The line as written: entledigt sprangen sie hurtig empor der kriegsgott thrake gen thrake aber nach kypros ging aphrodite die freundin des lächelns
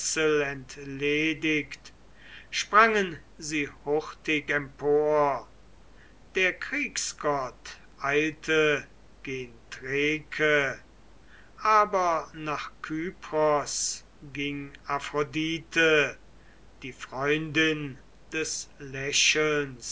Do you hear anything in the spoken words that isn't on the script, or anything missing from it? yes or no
yes